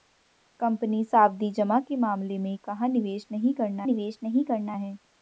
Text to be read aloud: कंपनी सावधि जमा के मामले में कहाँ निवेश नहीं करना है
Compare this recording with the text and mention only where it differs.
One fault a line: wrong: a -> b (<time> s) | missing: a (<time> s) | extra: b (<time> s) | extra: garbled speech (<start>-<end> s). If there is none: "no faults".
extra: निवेश नहीं करना (3.8 s)